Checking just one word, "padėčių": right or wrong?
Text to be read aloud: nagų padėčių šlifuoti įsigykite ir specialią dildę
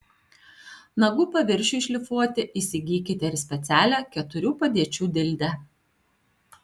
wrong